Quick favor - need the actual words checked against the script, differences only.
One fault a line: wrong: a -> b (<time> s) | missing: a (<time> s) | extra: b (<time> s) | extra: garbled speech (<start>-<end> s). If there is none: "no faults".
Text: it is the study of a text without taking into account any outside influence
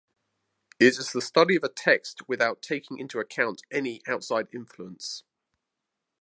no faults